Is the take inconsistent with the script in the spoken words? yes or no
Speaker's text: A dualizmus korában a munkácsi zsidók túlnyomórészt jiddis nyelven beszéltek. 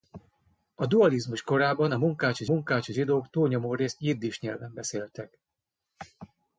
yes